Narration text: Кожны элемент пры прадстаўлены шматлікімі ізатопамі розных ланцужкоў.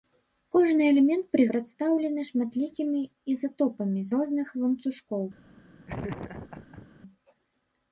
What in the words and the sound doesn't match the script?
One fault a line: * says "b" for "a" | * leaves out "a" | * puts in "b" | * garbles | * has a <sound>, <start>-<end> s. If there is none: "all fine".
* has a laugh, 5.9-6.9 s